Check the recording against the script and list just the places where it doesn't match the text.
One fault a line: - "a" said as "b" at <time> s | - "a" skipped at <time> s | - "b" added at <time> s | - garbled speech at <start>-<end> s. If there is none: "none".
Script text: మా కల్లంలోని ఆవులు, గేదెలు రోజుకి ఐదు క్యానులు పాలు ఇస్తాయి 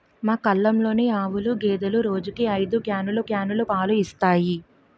- "క్యానులు" added at 3.3 s